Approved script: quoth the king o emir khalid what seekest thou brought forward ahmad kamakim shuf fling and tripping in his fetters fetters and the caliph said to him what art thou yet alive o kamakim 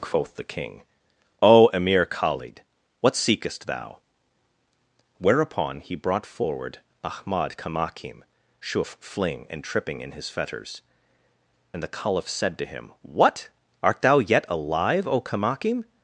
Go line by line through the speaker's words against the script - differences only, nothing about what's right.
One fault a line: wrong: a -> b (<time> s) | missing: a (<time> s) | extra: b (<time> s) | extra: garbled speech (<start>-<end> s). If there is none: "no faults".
extra: whereupon he (5.2 s)
missing: fetters (10.8 s)